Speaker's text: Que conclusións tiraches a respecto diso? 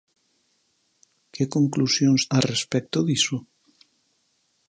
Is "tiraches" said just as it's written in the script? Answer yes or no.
no